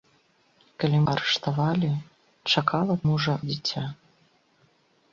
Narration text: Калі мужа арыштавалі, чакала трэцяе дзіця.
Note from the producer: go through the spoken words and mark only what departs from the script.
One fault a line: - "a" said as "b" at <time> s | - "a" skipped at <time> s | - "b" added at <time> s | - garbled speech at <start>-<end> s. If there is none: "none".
- "мужа" skipped at 1.0 s
- "трэцяе" said as "мужа" at 3.1 s